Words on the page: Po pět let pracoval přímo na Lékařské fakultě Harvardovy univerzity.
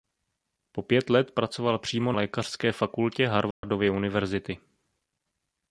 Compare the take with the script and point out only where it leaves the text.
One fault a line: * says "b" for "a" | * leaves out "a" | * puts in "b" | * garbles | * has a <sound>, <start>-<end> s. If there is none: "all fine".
* leaves out "na"
* has a dropout, 3.5-3.6 s